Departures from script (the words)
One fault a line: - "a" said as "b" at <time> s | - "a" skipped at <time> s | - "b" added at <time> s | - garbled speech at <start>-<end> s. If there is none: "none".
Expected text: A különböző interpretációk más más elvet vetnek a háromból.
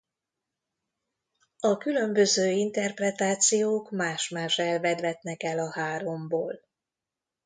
- "el" added at 5.4 s